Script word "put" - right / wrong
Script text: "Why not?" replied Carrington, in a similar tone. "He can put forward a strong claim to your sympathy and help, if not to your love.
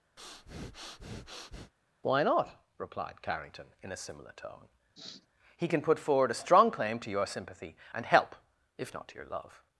right